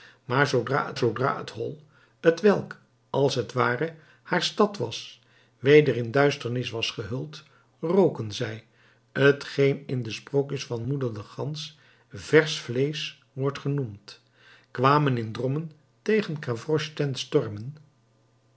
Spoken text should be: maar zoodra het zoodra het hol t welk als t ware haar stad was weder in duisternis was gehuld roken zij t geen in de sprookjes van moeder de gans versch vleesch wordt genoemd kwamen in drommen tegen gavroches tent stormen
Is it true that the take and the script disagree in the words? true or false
false